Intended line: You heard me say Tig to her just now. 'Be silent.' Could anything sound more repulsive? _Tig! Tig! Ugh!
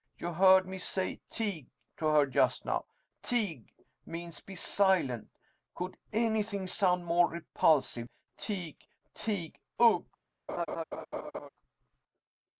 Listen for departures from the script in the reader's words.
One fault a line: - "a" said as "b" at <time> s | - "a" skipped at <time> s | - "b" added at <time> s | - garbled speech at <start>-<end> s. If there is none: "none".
- "Tig means" added at 3.2 s